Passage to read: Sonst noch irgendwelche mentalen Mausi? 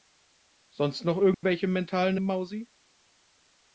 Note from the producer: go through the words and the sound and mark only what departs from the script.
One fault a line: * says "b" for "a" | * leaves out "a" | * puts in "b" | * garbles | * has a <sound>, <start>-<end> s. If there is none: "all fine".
* has a dropout, 1.3-1.4 s